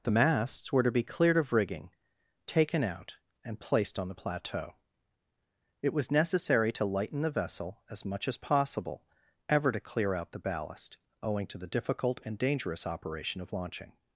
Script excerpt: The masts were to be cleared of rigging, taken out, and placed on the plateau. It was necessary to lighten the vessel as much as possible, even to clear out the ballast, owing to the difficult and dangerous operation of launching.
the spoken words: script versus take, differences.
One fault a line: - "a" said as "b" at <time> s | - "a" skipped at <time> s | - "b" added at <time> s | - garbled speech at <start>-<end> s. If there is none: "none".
- "even" said as "ever" at 9.5 s